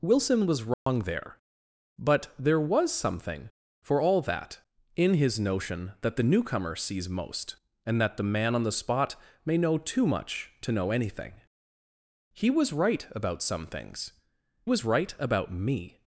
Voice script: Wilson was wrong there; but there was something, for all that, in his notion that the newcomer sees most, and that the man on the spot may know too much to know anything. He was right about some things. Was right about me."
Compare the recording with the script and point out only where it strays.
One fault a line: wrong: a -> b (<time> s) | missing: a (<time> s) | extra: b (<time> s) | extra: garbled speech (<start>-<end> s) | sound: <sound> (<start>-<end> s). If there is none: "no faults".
sound: dropout (0.7-0.9 s)